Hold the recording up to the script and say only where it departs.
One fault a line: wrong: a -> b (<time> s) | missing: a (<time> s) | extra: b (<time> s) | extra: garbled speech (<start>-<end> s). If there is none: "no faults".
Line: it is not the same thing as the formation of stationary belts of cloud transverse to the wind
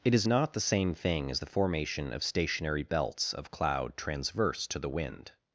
no faults